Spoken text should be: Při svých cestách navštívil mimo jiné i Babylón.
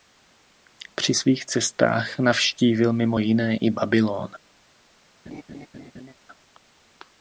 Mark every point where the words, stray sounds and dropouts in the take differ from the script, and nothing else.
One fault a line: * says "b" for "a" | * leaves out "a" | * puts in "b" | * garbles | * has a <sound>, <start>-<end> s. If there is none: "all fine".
* has a laugh, 5.3-6.1 s